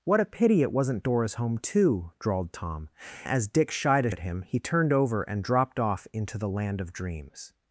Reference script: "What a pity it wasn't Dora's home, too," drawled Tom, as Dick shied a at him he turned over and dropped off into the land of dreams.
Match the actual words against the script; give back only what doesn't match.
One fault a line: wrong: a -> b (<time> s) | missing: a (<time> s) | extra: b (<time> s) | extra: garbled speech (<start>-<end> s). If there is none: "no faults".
no faults